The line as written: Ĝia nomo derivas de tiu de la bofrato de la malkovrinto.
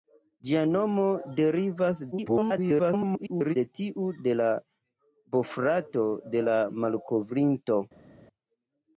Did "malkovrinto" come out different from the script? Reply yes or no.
no